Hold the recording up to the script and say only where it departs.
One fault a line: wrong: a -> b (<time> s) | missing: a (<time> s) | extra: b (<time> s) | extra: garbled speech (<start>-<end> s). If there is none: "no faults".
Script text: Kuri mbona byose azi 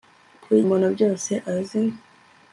no faults